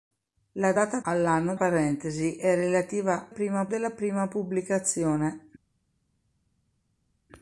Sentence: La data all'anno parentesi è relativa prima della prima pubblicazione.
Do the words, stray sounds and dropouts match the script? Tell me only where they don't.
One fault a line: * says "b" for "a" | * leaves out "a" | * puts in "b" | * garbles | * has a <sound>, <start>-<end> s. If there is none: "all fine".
all fine